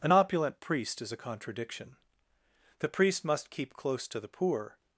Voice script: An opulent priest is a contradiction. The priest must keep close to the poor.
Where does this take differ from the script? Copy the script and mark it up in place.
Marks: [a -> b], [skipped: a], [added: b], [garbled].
An opulent priest is a contradiction. The priest must keep close to the poor.